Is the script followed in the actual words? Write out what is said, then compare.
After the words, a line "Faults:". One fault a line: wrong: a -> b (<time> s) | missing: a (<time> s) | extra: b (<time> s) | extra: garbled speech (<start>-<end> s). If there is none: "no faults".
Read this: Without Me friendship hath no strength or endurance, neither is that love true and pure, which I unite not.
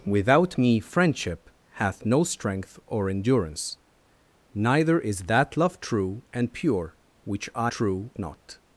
Without Me friendship hath no strength or endurance, neither is that love true and pure, which I true not.
Faults:
wrong: unite -> true (7.7 s)